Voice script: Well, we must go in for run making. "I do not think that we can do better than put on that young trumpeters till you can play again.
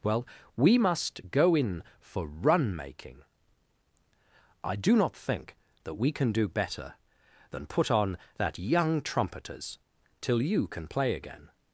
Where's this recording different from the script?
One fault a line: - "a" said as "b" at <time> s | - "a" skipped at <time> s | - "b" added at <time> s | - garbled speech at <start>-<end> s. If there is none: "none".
none